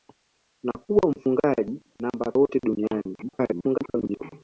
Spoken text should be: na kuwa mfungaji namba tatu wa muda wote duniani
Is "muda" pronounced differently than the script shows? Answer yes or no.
yes